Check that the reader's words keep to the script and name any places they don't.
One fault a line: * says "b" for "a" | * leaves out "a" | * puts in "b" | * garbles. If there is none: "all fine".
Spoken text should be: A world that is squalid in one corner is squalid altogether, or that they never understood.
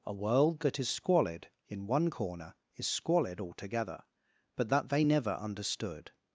* says "but" for "or"